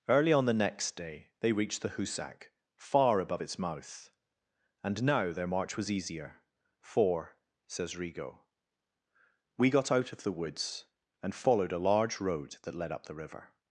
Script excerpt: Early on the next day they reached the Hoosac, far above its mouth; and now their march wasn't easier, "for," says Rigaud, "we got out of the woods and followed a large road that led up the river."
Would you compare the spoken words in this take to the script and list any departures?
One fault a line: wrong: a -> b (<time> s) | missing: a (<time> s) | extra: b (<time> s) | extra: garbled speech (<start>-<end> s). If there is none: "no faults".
wrong: wasn't -> was (5.8 s)